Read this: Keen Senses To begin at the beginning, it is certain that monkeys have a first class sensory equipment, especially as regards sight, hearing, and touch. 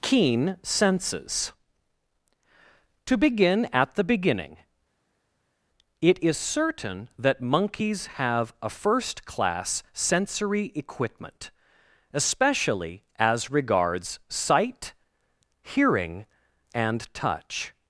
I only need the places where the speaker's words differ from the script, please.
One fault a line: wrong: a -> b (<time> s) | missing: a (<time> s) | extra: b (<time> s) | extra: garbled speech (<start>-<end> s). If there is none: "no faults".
no faults